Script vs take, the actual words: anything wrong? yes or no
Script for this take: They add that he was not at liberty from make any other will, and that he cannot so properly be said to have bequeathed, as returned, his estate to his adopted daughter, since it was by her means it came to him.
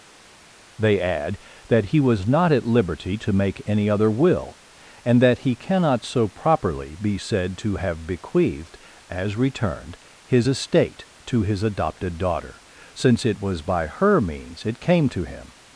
yes